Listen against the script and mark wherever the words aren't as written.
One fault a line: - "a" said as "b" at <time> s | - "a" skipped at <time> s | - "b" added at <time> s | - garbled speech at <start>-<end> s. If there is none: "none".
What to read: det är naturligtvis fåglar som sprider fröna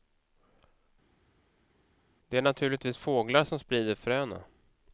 none